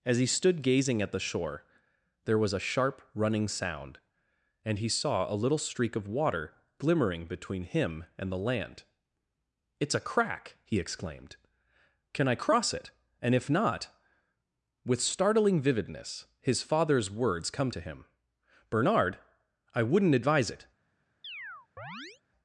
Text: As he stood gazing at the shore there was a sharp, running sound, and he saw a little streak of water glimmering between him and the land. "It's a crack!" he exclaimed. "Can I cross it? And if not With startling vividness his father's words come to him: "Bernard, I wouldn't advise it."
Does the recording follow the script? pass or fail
pass